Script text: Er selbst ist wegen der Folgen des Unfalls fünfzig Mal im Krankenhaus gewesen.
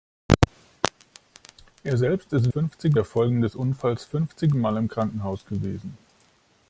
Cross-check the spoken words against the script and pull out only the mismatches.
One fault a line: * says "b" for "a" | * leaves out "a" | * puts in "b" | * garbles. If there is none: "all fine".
* says "fünfzig" for "wegen"